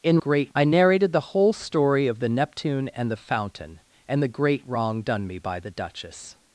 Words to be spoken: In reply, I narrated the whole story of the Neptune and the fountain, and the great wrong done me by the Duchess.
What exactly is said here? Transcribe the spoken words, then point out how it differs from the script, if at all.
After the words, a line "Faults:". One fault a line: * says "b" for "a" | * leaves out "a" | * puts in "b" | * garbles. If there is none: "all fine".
In great, I narrated the whole story of the Neptune and the fountain, and the great wrong done me by the Duchess.
Faults:
* says "great" for "reply"